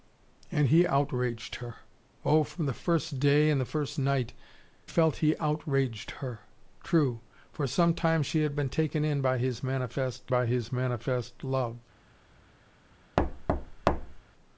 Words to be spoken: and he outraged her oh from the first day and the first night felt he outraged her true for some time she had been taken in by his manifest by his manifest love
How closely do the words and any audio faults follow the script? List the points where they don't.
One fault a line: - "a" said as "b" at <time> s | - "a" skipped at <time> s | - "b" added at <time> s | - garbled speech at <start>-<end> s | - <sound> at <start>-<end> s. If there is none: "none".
- thud at 13.2-14.2 s